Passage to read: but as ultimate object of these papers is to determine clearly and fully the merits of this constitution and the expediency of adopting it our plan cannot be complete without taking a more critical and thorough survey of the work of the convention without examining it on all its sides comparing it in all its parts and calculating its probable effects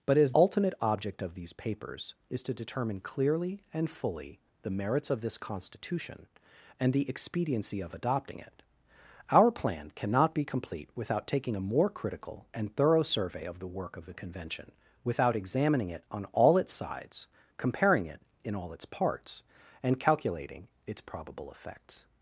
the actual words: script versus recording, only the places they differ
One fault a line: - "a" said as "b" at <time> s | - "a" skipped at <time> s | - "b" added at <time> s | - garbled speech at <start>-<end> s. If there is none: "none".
none